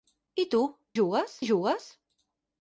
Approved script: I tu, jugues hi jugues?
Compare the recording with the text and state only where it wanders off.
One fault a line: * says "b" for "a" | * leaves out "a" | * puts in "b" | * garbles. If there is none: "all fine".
all fine